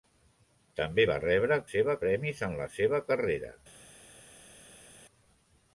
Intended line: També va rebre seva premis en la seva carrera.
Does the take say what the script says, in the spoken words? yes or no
yes